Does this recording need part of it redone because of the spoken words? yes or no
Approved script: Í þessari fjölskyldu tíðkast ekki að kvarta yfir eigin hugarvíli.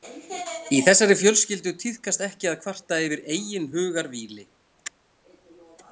no